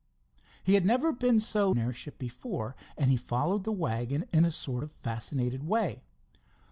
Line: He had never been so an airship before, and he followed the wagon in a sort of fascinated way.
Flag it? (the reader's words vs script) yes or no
no